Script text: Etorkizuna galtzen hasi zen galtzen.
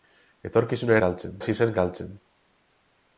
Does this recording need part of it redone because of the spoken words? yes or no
no